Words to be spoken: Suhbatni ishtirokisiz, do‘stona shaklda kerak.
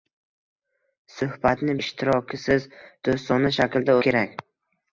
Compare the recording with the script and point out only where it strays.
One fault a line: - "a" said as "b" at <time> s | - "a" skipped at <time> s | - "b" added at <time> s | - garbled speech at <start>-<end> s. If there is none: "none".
none